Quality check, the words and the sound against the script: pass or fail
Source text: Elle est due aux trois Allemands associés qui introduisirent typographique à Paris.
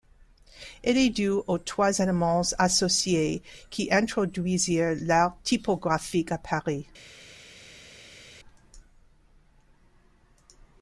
fail